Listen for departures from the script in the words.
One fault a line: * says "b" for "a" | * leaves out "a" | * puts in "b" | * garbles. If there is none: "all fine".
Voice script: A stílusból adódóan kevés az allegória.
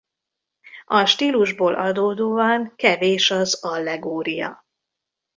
all fine